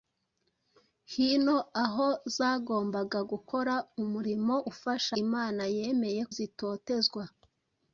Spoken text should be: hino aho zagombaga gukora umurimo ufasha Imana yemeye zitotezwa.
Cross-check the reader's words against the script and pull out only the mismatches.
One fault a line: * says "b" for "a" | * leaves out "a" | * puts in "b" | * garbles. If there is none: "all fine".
all fine